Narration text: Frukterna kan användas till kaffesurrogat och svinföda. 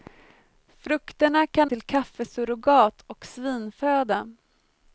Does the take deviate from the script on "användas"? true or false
true